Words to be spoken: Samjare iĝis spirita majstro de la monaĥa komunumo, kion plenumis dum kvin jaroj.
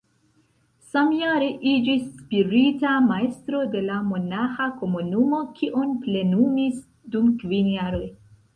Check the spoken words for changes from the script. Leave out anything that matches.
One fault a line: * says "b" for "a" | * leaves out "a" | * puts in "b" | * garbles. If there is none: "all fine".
all fine